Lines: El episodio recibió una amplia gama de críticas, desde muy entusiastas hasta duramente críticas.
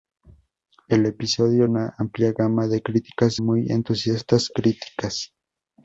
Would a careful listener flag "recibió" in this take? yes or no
yes